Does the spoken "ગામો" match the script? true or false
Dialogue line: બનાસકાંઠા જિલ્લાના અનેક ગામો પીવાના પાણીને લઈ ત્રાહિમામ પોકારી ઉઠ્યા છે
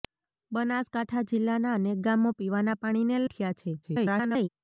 true